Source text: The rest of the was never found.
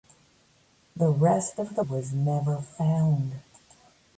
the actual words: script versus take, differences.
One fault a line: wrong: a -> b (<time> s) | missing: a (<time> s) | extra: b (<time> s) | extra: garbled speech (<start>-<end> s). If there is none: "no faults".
no faults